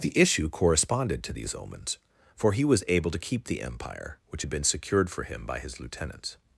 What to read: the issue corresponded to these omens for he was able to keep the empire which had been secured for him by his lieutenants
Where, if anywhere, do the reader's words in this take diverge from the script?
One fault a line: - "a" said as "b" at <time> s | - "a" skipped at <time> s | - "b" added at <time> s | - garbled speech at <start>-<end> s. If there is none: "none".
none